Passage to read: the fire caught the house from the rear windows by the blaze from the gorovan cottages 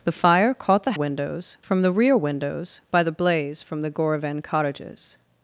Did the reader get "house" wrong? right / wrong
wrong